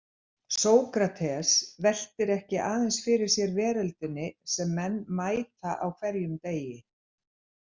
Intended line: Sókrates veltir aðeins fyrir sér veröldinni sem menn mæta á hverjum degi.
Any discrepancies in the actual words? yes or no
yes